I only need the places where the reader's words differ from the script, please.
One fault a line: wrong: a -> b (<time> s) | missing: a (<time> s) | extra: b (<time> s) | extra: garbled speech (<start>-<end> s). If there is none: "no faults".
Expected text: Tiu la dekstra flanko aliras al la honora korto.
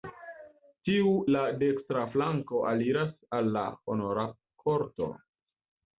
no faults